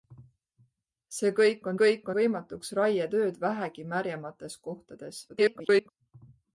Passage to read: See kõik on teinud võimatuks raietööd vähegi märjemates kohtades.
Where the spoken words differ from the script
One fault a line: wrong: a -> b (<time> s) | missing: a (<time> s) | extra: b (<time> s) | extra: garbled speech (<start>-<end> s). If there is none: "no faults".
wrong: teinud -> kõik (1.8 s)
extra: garbled speech (5.3-5.9 s)